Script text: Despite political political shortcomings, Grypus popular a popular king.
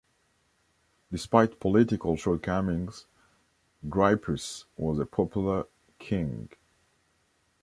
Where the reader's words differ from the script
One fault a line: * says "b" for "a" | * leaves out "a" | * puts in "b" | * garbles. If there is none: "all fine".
* leaves out "political"
* says "was" for "popular"